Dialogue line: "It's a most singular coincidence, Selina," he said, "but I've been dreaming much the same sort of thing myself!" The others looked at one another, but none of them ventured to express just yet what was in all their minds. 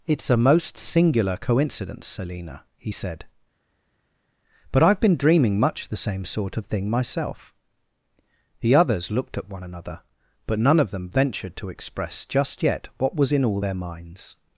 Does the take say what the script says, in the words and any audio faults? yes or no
yes